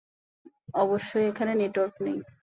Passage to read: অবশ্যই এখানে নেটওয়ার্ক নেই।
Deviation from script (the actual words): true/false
false